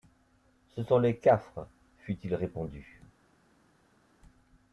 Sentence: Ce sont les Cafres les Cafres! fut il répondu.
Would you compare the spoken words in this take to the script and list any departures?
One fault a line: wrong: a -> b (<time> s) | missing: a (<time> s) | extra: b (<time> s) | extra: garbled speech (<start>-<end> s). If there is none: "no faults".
missing: les Cafres (1.7 s)